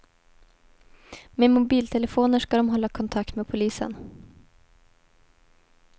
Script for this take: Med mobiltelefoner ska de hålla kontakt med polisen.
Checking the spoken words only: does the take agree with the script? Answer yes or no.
yes